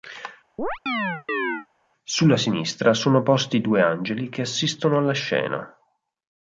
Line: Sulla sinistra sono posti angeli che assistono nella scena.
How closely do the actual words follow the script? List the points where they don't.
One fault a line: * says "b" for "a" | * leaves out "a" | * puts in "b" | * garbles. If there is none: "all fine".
* puts in "due"
* says "alla" for "nella"